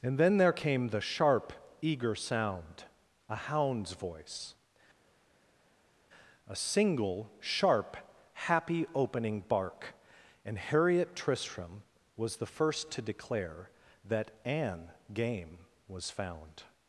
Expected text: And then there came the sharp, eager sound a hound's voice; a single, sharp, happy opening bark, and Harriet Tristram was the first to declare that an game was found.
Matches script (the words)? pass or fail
pass